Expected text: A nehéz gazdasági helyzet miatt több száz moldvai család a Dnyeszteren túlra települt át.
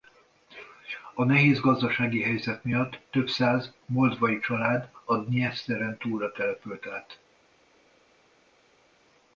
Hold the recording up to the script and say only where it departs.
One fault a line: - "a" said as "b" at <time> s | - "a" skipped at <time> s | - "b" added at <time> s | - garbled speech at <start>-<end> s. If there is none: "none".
none